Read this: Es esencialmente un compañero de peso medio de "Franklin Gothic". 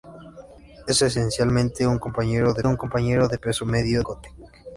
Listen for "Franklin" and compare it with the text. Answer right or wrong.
wrong